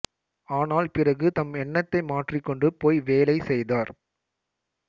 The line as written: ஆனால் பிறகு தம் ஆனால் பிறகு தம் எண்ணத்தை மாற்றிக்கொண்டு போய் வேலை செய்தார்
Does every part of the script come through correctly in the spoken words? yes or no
no